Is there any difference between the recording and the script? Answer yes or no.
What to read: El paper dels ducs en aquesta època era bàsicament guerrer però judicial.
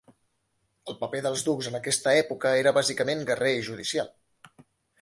yes